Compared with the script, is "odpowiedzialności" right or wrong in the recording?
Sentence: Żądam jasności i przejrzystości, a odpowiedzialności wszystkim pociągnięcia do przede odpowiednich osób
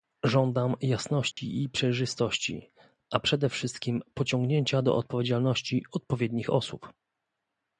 wrong